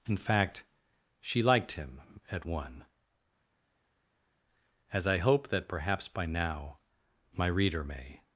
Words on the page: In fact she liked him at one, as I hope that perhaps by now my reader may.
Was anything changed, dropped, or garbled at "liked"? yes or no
no